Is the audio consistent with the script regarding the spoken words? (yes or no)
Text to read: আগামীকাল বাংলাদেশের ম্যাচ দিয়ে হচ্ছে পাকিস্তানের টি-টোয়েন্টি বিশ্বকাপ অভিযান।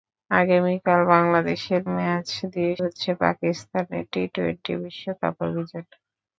yes